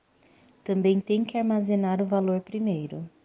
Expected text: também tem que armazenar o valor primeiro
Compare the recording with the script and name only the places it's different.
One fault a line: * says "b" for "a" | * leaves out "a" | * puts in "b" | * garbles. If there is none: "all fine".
all fine